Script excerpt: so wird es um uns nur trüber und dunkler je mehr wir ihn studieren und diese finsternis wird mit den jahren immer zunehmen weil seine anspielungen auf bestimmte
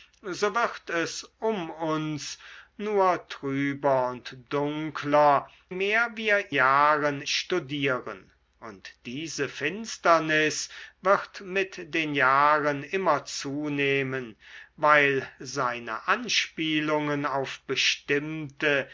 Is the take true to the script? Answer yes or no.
no